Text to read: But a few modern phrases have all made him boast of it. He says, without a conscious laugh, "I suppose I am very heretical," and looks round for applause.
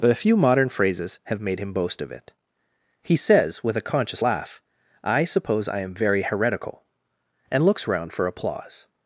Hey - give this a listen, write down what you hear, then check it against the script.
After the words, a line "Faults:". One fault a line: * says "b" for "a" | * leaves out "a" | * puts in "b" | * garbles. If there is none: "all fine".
But a few modern phrases have made him boast of it. He says, with a conscious laugh, "I suppose I am very heretical," and looks round for applause.
Faults:
* leaves out "all"
* says "with" for "without"